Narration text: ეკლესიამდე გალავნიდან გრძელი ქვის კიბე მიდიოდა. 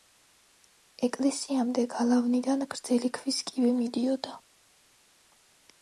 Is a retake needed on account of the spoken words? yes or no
no